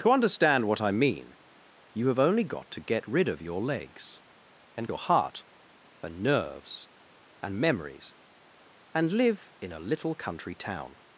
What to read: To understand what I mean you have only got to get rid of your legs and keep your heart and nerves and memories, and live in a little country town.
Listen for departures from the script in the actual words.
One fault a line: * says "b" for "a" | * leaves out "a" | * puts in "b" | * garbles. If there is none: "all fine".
* leaves out "keep"